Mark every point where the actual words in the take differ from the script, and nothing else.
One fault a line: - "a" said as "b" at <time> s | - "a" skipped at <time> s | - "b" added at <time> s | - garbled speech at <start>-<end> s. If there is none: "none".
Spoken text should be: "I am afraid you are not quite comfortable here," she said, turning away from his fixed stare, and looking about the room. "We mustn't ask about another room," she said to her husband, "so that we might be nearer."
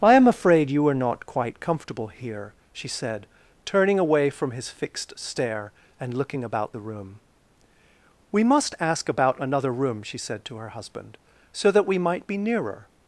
- "mustn't" said as "must" at 8.4 s